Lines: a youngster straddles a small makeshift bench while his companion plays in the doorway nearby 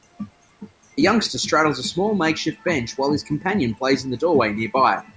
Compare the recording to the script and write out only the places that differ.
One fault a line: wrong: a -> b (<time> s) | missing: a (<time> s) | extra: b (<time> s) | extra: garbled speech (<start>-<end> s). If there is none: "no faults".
no faults